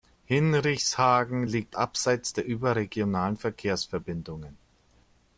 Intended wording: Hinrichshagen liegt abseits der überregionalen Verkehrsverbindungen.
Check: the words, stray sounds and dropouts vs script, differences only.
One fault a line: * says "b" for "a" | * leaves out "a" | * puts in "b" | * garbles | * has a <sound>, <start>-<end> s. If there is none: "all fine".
all fine